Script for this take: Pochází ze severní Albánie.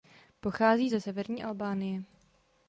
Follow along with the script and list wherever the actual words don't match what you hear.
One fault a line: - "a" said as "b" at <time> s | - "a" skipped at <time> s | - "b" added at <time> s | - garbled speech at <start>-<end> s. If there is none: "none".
none